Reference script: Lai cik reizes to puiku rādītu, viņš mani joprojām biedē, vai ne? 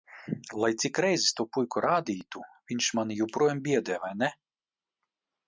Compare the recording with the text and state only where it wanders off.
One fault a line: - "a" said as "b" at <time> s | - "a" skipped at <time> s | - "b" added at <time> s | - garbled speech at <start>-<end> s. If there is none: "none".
none